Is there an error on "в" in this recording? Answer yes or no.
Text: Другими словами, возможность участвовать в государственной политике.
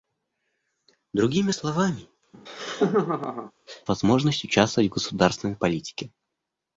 no